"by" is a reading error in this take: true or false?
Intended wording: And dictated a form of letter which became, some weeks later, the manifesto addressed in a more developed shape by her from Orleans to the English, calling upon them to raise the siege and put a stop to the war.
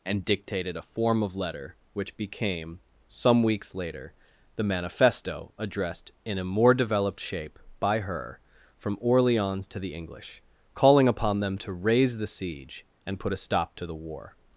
false